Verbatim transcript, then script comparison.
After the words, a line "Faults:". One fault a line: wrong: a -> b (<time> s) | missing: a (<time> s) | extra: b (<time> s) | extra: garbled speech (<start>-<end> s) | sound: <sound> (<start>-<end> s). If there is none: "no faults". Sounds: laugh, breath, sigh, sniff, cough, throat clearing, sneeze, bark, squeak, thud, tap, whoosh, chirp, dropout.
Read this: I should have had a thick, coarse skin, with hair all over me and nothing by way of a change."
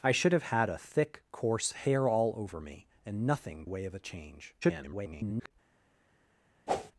I should have had a thick, coarse hair all over me and nothing way of a change." [garbled]
Faults:
missing: skin with (1.7 s)
missing: by (3.6 s)
extra: garbled speech (4.6-5.5 s)
sound: whoosh (6.7-6.9 s)